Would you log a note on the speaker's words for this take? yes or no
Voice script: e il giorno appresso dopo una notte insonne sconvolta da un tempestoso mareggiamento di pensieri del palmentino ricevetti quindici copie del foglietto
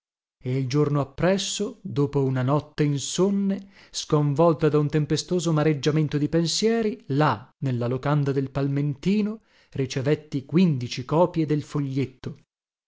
yes